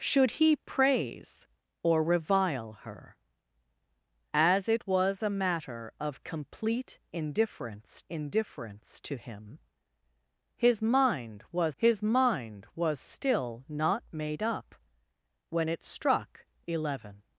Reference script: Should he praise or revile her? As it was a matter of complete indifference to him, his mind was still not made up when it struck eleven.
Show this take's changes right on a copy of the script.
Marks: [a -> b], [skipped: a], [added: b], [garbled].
Should he praise or revile her? As it was a matter of complete indifference [added: indifference] to him, his mind was [added: his mind was] still not made up when it struck eleven.